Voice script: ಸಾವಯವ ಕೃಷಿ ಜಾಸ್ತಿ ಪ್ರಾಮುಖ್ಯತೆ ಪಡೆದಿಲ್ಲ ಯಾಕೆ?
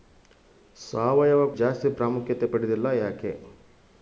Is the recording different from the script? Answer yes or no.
yes